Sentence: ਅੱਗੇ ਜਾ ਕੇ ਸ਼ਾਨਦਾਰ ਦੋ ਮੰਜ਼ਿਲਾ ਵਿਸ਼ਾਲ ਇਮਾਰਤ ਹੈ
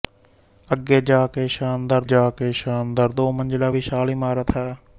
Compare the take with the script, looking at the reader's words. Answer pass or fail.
fail